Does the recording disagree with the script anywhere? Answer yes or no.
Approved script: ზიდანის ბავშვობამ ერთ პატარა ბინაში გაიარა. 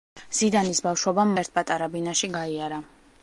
no